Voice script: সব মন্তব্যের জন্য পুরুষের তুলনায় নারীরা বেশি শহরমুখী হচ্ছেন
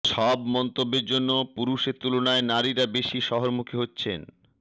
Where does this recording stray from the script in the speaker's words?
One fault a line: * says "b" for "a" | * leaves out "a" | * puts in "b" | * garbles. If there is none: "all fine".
all fine